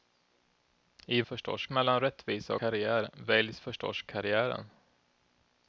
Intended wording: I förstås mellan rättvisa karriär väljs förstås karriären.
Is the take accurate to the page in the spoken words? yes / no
yes